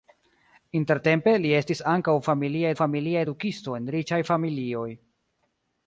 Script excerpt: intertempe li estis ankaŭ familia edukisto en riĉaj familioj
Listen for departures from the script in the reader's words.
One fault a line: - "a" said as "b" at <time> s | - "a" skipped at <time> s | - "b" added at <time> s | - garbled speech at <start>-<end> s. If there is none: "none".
- "familia" added at 2.8 s